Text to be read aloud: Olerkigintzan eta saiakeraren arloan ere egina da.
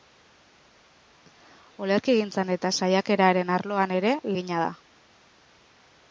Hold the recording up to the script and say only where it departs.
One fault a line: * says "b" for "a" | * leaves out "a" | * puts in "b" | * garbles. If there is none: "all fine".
all fine